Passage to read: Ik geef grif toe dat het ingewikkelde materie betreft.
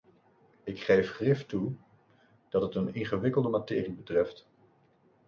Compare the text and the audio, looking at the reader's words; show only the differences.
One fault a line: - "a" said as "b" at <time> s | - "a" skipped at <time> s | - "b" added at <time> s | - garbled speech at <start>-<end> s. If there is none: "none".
- "een" added at 2.7 s